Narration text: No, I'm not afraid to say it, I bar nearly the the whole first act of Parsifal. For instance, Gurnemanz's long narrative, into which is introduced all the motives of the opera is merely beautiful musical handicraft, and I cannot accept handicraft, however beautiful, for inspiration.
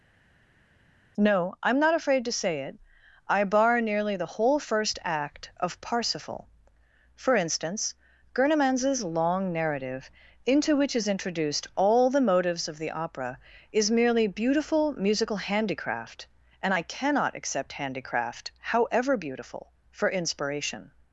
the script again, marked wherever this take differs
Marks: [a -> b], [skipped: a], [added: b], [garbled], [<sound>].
No, I'm not afraid to say it, I bar nearly the [skipped: the] whole first act of Parsifal. For instance, Gurnemanz's long narrative, into which is introduced all the motives of the opera is merely beautiful musical handicraft, and I cannot accept handicraft, however beautiful, for inspiration.